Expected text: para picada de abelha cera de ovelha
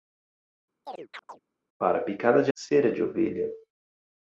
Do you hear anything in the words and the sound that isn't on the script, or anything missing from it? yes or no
yes